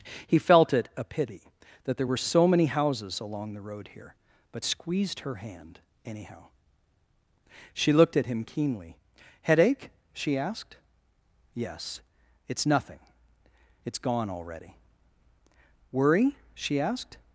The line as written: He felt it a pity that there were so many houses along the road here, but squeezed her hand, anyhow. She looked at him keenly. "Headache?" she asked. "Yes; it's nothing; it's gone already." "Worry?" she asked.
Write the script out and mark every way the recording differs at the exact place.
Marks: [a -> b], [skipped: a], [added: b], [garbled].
He felt it a pity that there were so many houses along the road here, but squeezed her hand, anyhow. She looked at him keenly. "Headache?" she asked. "Yes; it's nothing; it's gone already." "Worry?" she asked.